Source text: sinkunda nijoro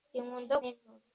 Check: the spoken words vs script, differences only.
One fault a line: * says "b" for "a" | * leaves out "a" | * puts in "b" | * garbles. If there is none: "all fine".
all fine